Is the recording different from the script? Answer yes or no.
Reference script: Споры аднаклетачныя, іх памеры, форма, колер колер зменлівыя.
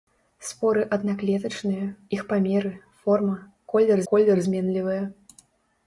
no